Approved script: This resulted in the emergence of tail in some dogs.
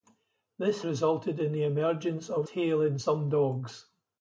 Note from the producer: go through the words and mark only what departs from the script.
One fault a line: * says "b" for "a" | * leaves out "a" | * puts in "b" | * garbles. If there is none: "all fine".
all fine